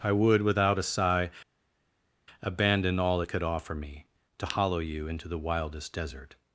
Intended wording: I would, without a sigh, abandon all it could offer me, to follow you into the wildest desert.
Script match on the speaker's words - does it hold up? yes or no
no